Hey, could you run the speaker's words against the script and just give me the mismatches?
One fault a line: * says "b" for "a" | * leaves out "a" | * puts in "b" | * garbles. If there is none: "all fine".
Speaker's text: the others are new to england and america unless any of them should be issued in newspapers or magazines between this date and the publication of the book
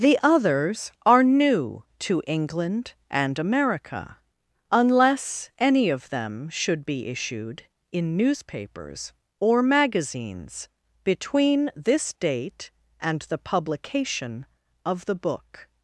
all fine